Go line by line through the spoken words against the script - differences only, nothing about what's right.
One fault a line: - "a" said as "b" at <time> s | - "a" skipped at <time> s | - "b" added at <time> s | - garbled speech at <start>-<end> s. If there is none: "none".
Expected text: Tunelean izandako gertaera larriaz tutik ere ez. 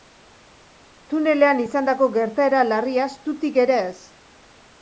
none